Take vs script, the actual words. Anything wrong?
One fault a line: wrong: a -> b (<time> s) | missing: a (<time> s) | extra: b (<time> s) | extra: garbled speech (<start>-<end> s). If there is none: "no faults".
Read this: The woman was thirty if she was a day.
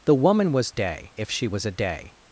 wrong: thirty -> day (0.7 s)